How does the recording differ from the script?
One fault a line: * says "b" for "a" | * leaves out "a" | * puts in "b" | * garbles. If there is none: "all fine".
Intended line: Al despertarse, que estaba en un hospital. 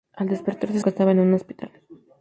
all fine